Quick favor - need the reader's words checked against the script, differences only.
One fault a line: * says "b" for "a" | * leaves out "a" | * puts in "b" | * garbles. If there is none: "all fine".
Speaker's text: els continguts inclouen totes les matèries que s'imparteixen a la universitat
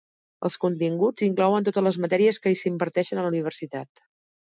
all fine